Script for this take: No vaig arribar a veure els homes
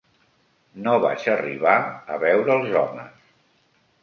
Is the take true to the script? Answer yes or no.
yes